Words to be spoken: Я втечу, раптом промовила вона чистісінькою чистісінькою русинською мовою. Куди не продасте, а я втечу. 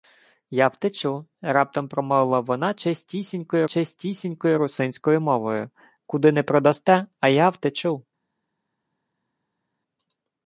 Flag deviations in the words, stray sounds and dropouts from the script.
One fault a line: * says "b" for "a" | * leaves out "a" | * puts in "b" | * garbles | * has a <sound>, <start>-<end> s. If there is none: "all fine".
all fine